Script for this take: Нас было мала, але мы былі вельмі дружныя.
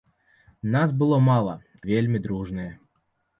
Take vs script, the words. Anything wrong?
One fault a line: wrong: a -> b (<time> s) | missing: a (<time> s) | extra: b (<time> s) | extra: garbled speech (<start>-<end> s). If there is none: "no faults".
missing: але мы былі (1.5 s)